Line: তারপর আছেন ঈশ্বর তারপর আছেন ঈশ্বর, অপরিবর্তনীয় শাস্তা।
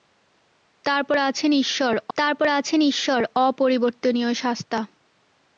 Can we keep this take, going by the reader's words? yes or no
yes